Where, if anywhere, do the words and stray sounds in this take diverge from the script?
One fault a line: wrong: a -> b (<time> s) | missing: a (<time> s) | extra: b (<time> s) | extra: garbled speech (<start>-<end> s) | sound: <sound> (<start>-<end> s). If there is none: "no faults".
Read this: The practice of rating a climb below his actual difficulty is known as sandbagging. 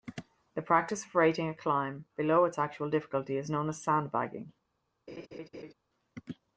wrong: his -> its (2.5 s)
sound: laugh (5.1-5.7 s)